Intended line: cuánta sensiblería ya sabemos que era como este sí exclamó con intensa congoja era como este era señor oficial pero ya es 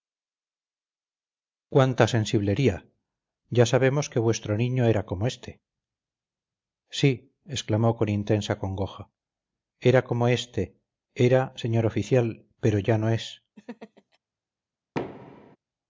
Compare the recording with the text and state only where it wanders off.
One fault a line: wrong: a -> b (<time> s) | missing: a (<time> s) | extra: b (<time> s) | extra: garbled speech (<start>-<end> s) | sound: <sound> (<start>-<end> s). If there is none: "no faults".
extra: vuestro niño (4.2 s)
extra: no (13.0 s)
sound: laugh (13.6-14.2 s)
sound: thud (14.9-15.6 s)